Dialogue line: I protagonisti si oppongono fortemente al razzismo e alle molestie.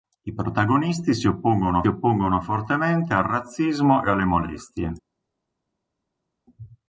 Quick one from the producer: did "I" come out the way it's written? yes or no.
yes